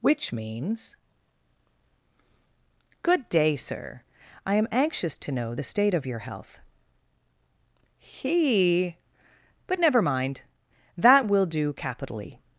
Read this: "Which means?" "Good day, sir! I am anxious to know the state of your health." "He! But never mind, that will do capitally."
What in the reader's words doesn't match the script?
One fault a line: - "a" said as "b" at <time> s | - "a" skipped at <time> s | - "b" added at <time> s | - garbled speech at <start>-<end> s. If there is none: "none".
none